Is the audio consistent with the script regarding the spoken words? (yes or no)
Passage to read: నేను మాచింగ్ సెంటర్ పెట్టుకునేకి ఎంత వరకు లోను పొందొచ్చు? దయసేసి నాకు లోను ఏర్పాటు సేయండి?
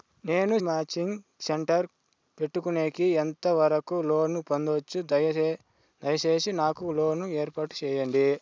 yes